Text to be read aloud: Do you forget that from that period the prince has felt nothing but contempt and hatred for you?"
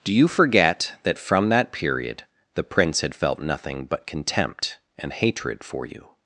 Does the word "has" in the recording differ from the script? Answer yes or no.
yes